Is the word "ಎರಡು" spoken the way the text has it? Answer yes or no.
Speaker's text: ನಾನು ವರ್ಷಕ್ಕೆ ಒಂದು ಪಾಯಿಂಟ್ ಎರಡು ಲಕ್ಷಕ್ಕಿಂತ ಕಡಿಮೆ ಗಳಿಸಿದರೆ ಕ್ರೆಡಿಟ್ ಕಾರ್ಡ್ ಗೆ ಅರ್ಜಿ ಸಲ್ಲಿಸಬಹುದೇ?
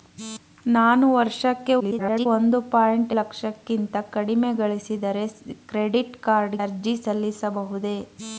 no